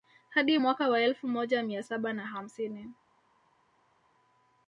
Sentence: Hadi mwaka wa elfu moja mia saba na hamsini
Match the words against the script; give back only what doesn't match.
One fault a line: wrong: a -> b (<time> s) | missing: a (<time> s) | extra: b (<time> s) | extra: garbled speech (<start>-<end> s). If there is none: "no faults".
no faults